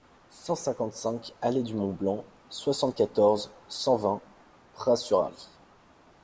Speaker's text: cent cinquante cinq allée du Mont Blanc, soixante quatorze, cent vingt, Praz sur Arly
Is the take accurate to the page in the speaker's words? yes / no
yes